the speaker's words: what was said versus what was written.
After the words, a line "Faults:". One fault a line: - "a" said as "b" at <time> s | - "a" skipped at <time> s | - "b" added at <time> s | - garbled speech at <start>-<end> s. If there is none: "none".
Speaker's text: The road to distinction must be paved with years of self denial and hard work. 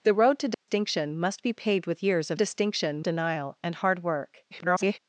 The road to distinction must be paved with years of distinction denial and hard work. [garbled]
Faults:
- "self" said as "distinction" at 2.3 s
- garbled speech at 4.5-5.0 s